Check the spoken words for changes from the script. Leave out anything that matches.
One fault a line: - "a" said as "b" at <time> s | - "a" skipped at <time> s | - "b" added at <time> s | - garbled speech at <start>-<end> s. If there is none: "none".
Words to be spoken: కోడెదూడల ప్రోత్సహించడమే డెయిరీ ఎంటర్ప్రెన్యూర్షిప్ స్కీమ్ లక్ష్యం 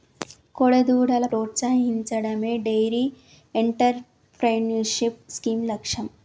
none